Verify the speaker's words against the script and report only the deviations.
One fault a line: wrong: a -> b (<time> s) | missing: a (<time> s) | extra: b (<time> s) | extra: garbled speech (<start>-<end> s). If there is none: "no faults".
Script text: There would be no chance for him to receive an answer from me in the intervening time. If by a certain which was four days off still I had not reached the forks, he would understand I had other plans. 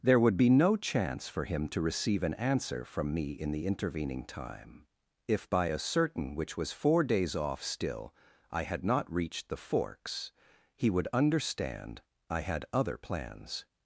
no faults